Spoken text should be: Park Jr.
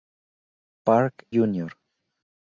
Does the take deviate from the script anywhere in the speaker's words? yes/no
no